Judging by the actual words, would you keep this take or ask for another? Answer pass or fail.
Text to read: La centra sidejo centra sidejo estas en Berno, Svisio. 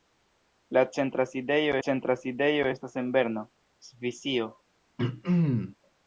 pass